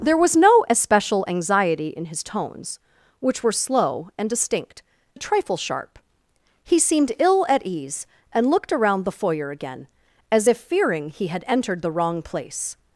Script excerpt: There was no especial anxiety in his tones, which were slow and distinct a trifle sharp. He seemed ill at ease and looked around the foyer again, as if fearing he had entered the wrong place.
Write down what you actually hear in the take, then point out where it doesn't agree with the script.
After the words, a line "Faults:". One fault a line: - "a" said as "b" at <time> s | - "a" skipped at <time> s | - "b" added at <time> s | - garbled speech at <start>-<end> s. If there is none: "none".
There was no especial anxiety in his tones, which were slow and distinct a trifle sharp. He seemed ill at ease and looked around the foyer again, as if fearing he had entered the wrong place.
Faults:
none